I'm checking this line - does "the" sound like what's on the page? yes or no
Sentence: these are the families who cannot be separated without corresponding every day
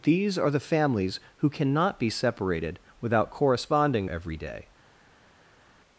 yes